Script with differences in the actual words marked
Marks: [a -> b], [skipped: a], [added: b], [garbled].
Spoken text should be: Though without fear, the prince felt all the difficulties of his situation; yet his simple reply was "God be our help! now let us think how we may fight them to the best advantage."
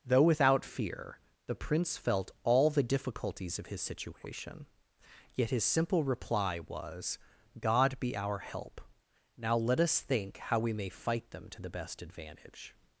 Though without fear, the prince felt all the difficulties of his situation; yet his simple reply was "God be our help! now let us think how we may fight them to the best advantage."